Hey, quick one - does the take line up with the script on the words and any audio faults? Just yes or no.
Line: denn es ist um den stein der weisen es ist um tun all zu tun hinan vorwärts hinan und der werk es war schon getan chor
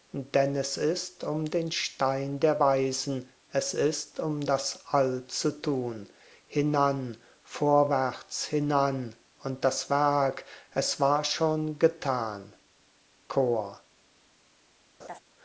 no